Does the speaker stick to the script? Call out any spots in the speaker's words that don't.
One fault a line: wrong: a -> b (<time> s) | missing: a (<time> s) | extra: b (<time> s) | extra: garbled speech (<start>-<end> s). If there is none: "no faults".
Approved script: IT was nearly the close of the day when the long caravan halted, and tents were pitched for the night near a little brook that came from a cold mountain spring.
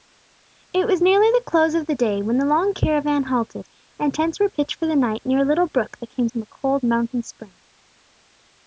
no faults